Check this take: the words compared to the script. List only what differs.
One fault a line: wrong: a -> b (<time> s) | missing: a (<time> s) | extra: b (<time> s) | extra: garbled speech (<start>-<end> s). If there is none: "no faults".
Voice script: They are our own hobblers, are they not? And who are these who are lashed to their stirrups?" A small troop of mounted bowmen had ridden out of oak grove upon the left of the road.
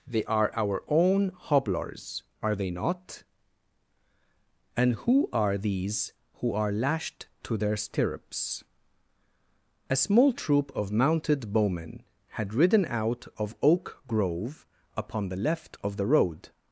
no faults